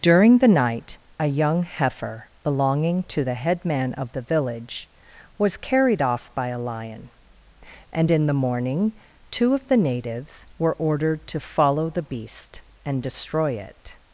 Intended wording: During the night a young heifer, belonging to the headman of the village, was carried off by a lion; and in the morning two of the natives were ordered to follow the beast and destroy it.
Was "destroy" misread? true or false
false